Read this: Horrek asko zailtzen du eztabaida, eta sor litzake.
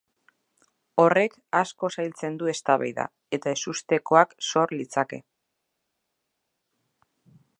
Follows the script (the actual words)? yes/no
no